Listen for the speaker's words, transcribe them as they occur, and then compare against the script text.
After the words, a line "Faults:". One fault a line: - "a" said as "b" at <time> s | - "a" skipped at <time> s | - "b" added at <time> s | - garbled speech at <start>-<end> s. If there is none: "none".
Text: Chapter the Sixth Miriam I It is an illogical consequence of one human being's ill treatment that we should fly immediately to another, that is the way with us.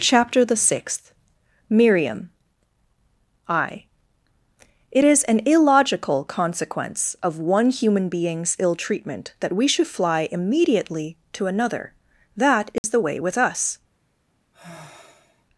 Chapter the Sixth Miriam I It is an illogical consequence of one human being's ill treatment that we should fly immediately to another, that is the way with us.
Faults:
none